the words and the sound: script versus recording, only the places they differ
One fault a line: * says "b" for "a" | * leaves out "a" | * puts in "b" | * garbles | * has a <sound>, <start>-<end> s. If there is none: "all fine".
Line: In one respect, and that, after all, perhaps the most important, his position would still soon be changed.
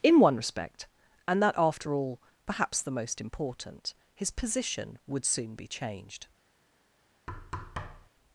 * leaves out "still"
* has a thud, 7.3-8.1 s